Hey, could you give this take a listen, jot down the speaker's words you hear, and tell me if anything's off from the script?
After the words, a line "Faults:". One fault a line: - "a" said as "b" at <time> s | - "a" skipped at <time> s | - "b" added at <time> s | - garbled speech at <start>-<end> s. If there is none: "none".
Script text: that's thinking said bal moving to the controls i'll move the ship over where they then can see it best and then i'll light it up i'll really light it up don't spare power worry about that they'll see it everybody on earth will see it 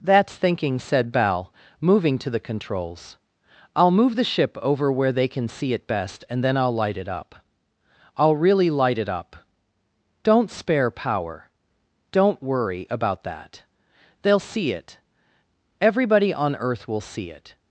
that's thinking said bal moving to the controls i'll move the ship over where they can see it best and then i'll light it up i'll really light it up don't spare power don't worry about that they'll see it everybody on earth will see it
Faults:
- "then" skipped at 5.3 s
- "don't" added at 12.1 s